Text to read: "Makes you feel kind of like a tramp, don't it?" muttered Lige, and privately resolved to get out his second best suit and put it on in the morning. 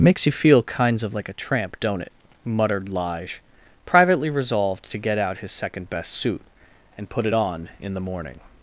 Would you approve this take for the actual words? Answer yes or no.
no